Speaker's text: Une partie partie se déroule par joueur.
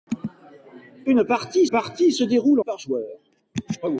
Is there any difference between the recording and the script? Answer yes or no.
no